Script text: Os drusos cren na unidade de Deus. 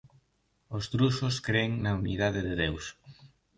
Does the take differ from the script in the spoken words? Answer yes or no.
no